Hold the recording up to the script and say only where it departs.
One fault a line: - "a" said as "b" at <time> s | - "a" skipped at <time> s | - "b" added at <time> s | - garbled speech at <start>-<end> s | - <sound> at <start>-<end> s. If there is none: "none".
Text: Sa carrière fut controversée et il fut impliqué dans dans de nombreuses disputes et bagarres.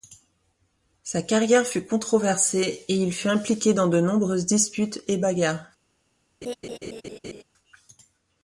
- "dans" skipped at 3.9 s
- laugh at 6.4-7.4 s